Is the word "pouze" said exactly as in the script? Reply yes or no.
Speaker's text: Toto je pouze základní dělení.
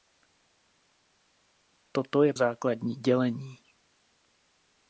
no